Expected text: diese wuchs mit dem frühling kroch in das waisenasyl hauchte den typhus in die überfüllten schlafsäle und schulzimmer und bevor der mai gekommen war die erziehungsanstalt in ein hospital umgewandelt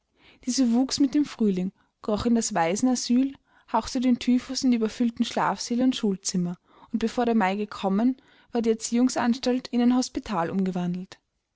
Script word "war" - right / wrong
right